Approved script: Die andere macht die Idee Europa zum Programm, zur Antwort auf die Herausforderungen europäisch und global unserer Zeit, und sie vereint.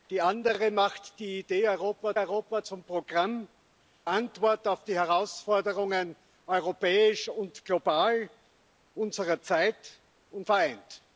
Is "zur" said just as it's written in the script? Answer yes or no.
no